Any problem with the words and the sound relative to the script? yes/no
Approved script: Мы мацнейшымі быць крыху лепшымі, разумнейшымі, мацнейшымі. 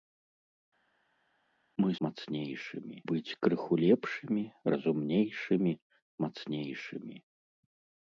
no